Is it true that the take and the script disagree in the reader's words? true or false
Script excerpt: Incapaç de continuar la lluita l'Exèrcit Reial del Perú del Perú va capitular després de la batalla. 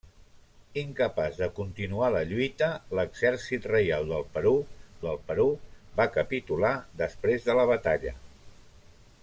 false